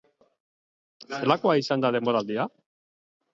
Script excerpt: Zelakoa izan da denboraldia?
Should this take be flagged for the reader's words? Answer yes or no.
no